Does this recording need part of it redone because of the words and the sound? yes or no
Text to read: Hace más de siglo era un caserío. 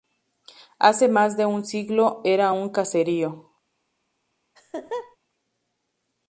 yes